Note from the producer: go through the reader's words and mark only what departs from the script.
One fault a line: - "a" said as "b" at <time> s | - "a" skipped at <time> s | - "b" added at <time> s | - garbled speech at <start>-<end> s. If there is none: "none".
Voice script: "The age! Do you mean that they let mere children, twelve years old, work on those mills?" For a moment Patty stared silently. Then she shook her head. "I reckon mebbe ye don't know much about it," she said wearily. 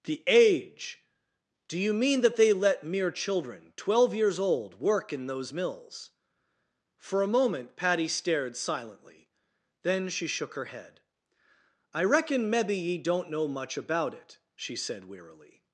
- "on" said as "in" at 5.1 s